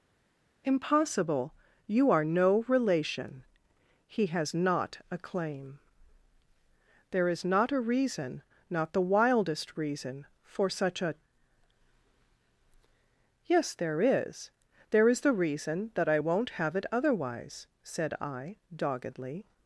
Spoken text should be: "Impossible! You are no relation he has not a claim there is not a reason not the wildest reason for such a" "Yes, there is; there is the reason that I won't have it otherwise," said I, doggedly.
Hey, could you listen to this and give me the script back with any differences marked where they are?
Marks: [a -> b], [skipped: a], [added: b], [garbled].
"Impossible! You are no relation he has not a claim there is not a reason not the wildest reason for such a" "Yes, there is; there is the reason that I won't have it otherwise," said I, doggedly.